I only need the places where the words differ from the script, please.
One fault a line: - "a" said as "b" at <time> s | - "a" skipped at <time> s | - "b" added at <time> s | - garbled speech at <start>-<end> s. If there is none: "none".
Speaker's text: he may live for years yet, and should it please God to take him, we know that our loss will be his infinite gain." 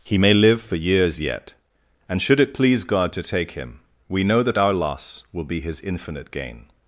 none